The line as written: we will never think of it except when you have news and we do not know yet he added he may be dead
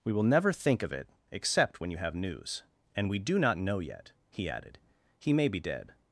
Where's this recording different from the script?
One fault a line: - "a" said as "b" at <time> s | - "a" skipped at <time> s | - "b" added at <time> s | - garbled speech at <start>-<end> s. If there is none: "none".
none